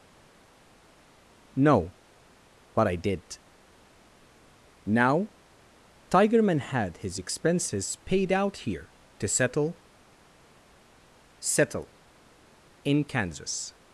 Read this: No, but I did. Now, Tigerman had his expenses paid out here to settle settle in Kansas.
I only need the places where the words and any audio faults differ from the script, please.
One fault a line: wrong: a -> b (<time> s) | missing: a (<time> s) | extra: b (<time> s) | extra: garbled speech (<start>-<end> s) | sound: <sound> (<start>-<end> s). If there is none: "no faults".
no faults